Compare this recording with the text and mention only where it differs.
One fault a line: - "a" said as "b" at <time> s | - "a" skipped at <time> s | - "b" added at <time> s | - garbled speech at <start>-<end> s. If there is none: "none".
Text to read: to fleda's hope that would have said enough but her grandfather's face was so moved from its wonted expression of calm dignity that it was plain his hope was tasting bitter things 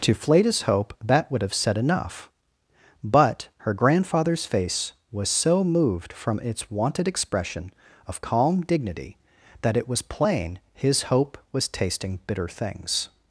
none